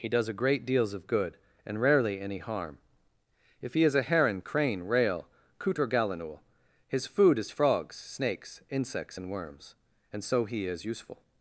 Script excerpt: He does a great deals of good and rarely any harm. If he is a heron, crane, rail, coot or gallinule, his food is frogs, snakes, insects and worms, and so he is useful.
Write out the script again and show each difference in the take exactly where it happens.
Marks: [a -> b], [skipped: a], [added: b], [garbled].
He does a great deals of good and rarely any harm. If he is a heron, crane, rail, coot or gallinule, his food is frogs, snakes, insects and worms, and so he is useful.